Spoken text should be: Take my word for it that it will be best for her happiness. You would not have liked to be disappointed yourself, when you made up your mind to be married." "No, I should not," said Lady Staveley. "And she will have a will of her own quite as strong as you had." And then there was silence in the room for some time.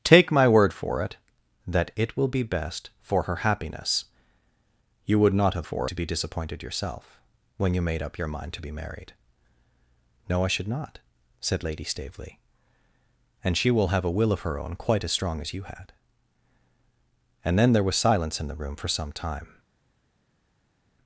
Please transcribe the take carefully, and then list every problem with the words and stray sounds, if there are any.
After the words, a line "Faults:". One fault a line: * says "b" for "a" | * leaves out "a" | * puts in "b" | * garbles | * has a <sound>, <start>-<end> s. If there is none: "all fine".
Take my word for it that it will be best for her happiness. You would not have for to be disappointed yourself, when you made up your mind to be married." "No, I should not," said Lady Staveley. "And she will have a will of her own quite as strong as you had." And then there was silence in the room for some time.
Faults:
* says "for" for "liked"